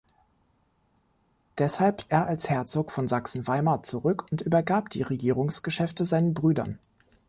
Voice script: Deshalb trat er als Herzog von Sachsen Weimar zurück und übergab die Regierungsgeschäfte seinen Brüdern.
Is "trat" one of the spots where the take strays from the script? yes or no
yes